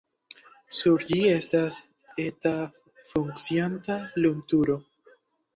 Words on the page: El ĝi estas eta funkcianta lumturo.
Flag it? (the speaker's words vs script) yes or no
yes